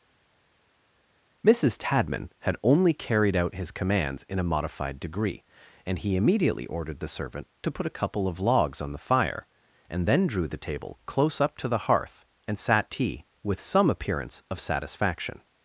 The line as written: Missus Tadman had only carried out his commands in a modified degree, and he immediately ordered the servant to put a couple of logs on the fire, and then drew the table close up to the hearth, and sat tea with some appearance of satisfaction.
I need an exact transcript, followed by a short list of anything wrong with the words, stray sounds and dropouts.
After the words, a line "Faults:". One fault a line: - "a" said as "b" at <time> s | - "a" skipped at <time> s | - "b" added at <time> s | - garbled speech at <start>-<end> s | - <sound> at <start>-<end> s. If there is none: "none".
Missus Tadman had only carried out his commands in a modified degree, and he immediately ordered the servant to put a couple of logs on the fire, and then drew the table close up to the hearth, and sat tea with some appearance of satisfaction.
Faults:
none